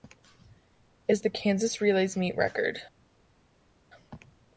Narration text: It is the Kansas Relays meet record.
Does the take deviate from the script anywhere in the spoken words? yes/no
no